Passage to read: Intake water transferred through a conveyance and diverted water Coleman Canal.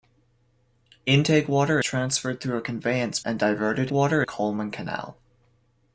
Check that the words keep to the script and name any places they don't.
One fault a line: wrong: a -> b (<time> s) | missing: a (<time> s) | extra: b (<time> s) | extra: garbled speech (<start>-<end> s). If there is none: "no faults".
no faults